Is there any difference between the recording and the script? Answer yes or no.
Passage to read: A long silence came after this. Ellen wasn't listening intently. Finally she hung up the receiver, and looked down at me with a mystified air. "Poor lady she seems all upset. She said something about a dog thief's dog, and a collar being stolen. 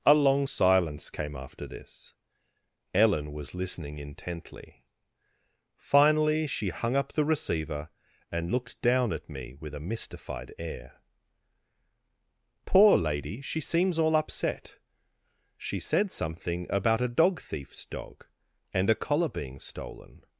yes